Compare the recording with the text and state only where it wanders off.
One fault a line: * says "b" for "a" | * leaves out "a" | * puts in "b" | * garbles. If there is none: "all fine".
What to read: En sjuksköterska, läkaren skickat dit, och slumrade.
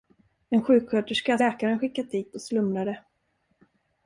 all fine